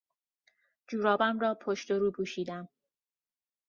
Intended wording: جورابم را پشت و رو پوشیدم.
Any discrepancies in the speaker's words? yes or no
no